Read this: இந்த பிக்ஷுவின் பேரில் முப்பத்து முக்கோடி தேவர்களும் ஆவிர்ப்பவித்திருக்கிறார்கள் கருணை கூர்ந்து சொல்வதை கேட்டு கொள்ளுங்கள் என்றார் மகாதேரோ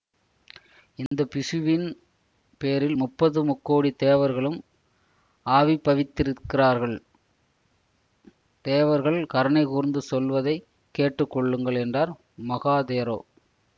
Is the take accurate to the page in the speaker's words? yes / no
no